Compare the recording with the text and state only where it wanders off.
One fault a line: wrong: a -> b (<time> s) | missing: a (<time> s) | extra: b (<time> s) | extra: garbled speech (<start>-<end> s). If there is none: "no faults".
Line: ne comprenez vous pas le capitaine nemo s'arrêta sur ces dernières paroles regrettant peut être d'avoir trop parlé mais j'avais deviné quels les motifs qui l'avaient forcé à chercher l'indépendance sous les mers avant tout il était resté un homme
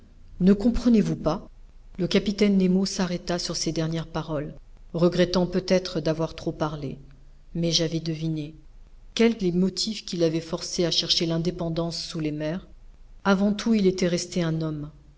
no faults